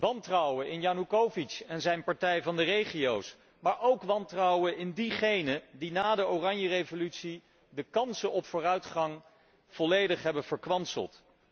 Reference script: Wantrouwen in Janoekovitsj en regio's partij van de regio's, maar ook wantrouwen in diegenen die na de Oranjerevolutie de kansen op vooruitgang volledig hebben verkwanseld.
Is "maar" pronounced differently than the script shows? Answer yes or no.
no